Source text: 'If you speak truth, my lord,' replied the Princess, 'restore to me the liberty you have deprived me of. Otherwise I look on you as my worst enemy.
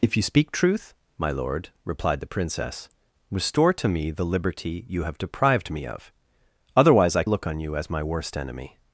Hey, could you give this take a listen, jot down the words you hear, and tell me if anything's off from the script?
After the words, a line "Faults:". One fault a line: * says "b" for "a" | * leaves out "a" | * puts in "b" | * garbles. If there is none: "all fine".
'If you speak truth, my lord,' replied the Princess, 'restore to me the liberty you have deprived me of. Otherwise I look on you as my worst enemy.
Faults:
all fine